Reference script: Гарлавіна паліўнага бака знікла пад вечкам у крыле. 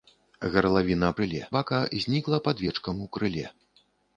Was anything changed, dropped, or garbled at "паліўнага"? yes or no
yes